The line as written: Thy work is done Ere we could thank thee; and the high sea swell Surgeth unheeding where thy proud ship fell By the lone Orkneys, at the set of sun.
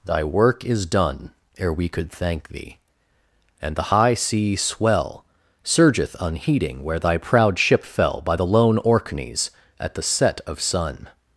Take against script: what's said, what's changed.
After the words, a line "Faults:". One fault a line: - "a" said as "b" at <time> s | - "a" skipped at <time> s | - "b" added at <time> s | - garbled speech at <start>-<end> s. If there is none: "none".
Thy work is done Ere we could thank thee; and the high sea swell Surgeth unheeding where thy proud ship fell By the lone Orkneys, at the set of sun.
Faults:
none